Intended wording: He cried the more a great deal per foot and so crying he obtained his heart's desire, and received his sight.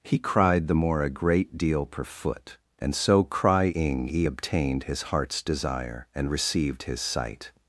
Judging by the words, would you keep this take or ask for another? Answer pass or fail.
pass